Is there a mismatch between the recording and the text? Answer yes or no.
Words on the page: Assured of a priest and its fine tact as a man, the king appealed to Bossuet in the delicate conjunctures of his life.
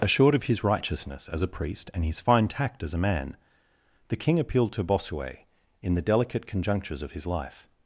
yes